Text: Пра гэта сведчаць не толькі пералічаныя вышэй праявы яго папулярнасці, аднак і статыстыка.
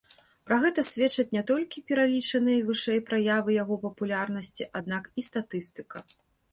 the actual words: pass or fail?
pass